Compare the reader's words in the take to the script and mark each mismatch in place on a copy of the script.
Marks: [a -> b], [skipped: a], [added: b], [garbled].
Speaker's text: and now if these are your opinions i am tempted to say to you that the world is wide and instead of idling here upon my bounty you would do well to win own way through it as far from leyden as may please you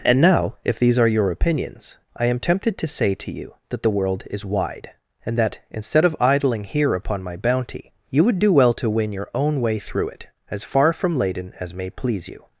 and now if these are your opinions i am tempted to say to you that the world is wide and [added: that] instead of idling here upon my bounty you would do well to win [added: your] own way through it as far from leyden as may please you